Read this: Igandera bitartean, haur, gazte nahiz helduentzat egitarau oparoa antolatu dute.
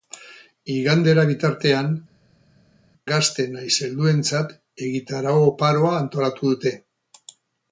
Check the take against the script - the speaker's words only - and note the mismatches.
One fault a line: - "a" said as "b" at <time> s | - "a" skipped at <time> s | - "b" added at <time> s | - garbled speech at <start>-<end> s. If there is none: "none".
- "haur" skipped at 1.9 s